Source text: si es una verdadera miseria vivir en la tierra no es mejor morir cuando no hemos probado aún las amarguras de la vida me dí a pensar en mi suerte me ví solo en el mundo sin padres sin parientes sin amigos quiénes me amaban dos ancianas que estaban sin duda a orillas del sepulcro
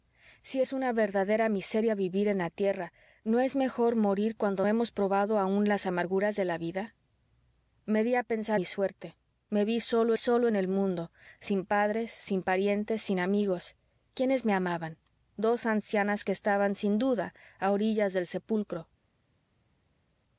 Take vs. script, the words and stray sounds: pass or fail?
fail